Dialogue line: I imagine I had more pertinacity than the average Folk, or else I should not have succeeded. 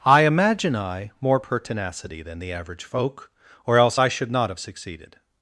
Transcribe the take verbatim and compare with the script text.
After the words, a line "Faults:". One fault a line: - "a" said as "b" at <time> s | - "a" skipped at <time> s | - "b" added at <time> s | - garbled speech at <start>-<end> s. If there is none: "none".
I imagine I more pertinacity than the average Folk, or else I should not have succeeded.
Faults:
- "had" skipped at 1.1 s